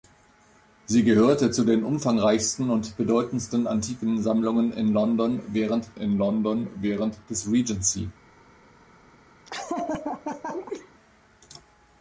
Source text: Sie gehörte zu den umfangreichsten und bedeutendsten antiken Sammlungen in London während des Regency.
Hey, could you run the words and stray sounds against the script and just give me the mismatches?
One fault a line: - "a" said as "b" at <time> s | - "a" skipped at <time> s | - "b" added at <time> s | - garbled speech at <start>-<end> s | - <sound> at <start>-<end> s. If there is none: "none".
- "in London während" added at 6.0 s
- laugh at 9.5-10.9 s